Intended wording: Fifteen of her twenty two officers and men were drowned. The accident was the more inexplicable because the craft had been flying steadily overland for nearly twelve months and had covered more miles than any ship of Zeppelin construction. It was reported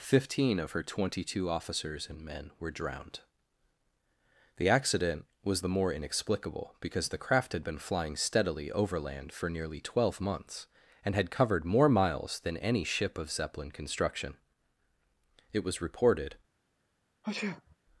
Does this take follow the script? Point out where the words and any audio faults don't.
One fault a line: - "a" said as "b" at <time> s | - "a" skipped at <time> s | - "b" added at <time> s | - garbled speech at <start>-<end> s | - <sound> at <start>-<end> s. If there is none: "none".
- sneeze at 17.2-17.8 s